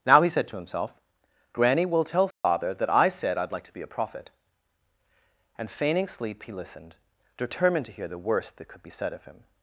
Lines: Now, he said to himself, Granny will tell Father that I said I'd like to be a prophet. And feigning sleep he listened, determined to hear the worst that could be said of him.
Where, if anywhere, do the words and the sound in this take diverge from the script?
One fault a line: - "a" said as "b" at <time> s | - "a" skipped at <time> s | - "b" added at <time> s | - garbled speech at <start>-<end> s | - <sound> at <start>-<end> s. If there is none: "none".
- dropout at 2.3-2.4 s